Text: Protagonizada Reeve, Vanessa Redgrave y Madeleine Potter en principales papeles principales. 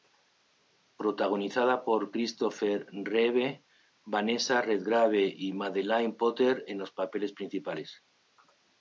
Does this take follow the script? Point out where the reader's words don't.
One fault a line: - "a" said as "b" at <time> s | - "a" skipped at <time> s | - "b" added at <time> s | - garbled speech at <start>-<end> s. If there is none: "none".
- "por Christopher" added at 1.8 s
- "principales" said as "los" at 6.8 s